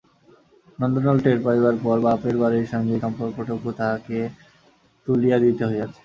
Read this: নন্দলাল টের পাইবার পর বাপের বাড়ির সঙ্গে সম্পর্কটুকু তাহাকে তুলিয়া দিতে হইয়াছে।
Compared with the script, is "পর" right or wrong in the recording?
right